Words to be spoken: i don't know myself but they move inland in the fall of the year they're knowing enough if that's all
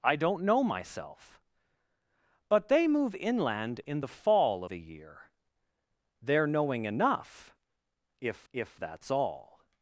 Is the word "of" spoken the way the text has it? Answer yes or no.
no